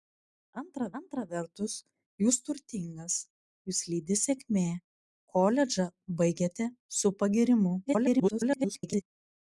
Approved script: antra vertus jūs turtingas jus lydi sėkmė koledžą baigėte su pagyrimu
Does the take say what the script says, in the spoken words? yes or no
no